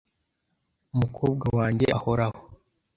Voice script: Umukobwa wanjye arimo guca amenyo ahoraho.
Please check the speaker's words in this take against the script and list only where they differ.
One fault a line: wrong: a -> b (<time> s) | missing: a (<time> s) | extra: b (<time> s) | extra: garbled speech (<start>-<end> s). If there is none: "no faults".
missing: arimo guca amenyo (1.9 s)